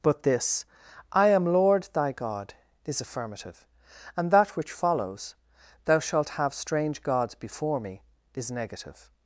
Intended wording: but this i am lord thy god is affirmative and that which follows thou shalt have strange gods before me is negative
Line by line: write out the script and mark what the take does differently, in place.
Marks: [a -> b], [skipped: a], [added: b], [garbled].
but this i am lord thy god is affirmative and that which follows thou shalt have strange gods before me is negative